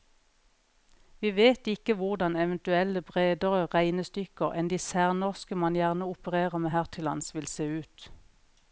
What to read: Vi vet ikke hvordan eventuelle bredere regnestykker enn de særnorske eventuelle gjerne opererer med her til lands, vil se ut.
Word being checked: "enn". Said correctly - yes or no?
yes